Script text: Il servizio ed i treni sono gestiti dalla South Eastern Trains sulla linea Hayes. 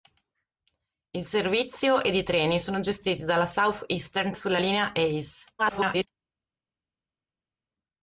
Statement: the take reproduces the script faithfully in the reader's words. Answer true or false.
false